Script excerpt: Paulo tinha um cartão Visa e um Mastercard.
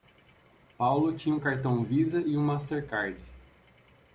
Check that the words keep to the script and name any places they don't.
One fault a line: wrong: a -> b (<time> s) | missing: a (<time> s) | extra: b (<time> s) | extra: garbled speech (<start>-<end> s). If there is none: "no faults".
no faults